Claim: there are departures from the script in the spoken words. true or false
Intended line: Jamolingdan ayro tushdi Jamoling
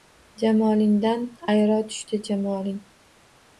false